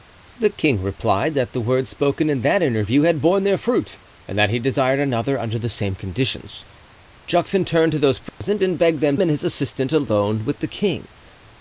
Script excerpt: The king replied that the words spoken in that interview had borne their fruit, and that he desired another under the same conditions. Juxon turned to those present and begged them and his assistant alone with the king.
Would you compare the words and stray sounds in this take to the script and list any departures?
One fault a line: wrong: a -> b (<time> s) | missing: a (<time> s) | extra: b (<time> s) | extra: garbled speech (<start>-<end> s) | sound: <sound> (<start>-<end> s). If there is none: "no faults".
sound: dropout (8.3-8.4 s)